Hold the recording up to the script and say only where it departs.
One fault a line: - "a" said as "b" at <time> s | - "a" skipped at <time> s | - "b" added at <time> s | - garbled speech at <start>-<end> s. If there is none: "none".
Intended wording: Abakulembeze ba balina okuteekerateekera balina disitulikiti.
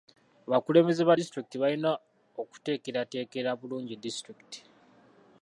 - "disitulikiti" added at 1.2 s
- "balina" said as "bulungi" at 3.6 s